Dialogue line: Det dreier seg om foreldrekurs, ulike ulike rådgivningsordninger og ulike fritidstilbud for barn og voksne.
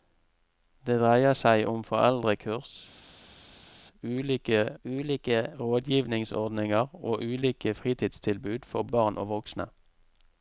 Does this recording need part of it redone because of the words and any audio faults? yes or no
no